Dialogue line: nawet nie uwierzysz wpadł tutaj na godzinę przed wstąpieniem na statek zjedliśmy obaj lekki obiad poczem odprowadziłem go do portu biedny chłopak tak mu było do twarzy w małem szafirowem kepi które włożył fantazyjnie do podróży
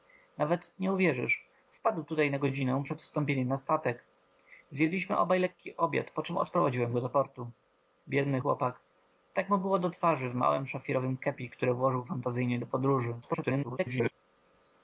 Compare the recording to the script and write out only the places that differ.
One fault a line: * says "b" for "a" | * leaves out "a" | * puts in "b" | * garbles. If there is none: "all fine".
* garbles